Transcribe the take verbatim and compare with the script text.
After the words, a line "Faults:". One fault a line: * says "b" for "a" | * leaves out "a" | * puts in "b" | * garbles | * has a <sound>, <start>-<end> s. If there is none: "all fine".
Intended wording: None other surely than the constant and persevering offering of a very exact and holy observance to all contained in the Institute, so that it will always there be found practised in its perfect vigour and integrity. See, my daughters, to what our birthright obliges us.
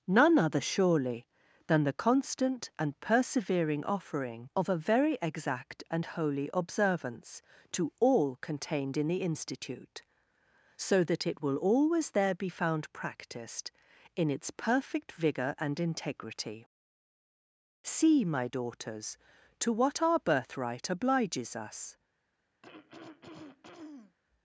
None other surely than the constant and persevering offering of a very exact and holy observance to all contained in the Institute, so that it will always there be found practised in its perfect vigour and integrity. See, my daughters, to what our birthright obliges us.
Faults:
* has a throat clearing, 22.6-24.2 s